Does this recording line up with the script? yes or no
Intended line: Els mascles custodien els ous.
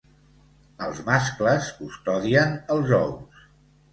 yes